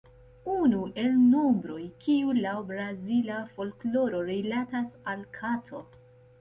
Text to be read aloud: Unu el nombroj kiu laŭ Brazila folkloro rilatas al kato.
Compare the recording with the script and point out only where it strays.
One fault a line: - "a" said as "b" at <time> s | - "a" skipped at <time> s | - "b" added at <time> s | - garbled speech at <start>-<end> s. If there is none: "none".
none